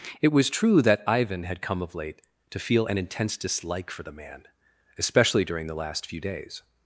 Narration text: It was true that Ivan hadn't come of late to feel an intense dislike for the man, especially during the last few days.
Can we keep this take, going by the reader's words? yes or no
no